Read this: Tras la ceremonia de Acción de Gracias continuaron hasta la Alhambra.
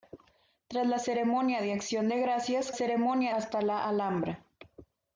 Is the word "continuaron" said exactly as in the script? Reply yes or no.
no